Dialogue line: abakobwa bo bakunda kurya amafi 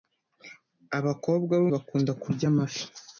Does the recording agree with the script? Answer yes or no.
yes